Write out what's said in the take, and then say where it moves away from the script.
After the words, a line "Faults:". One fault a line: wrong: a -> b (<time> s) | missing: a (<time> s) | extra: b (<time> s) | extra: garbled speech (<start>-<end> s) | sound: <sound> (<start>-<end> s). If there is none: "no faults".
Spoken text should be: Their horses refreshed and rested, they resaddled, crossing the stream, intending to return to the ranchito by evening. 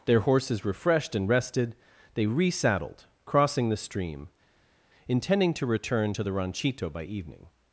Their horses refreshed and rested, they resaddled, crossing the stream, intending to return to the ranchito by evening.
Faults:
no faults